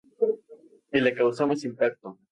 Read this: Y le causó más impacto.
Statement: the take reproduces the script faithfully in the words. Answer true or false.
true